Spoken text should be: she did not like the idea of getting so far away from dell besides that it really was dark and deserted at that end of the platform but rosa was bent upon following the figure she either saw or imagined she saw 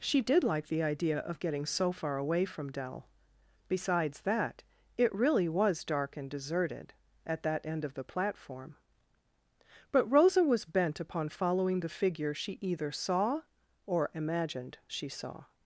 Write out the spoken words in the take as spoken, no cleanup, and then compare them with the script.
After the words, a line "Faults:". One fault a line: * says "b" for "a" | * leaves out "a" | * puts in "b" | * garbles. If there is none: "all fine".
she did like the idea of getting so far away from dell besides that it really was dark and deserted at that end of the platform but rosa was bent upon following the figure she either saw or imagined she saw
Faults:
* leaves out "not"